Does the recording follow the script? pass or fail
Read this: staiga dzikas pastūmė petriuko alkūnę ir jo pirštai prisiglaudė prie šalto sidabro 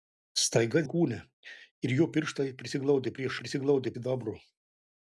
fail